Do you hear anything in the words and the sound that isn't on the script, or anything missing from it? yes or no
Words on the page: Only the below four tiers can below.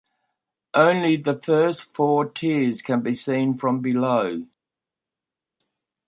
yes